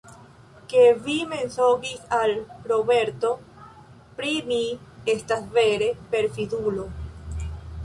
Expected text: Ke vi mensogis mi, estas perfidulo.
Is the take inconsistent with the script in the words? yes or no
yes